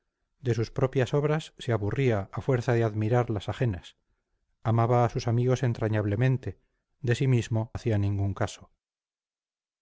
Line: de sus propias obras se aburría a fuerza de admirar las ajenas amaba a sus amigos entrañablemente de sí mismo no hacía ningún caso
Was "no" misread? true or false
true